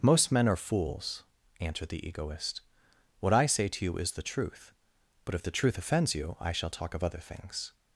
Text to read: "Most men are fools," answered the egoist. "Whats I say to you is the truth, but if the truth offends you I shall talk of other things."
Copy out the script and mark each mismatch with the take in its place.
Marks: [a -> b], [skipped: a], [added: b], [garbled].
"Most men are fools," answered the egoist. ["Whats -> What] I say to you is the truth, but if the truth offends you I shall talk of other things."